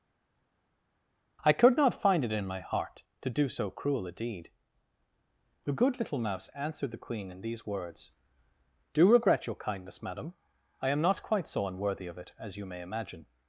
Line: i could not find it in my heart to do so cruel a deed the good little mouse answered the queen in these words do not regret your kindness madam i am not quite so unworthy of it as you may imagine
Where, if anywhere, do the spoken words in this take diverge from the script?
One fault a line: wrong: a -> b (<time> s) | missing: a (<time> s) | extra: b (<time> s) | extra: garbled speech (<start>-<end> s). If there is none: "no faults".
missing: not (9.1 s)